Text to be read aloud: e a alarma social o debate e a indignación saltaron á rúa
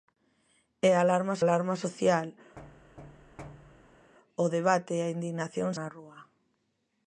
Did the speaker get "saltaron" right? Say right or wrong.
wrong